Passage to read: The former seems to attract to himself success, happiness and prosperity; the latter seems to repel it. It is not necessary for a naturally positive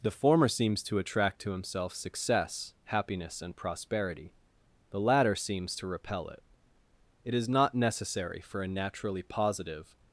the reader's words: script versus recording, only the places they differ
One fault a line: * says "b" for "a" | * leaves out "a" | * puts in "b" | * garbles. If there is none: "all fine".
all fine